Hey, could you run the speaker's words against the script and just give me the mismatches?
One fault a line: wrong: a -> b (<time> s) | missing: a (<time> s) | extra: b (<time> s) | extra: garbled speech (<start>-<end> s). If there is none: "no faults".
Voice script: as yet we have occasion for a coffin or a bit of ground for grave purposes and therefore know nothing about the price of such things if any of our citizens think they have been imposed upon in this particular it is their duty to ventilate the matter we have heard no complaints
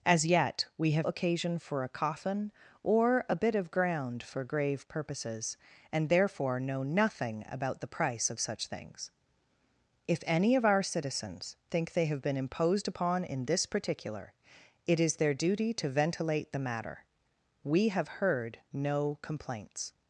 no faults